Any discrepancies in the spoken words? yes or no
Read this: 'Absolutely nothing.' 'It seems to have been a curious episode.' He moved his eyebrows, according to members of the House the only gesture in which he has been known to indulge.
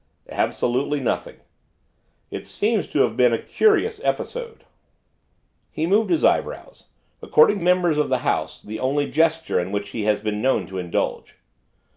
yes